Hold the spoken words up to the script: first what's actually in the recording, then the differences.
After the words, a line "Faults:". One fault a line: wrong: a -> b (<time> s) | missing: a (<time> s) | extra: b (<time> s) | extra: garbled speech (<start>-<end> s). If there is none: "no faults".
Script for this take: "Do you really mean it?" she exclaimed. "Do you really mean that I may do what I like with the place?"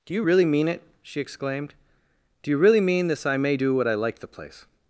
"Do you really mean it?" she exclaimed. "Do you really mean this I may do what I like the place?"
Faults:
wrong: that -> this (3.1 s)
missing: with (4.2 s)